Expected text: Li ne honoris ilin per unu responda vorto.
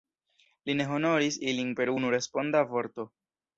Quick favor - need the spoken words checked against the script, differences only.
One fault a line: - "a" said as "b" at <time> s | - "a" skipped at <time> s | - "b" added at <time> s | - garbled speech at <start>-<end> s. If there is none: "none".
none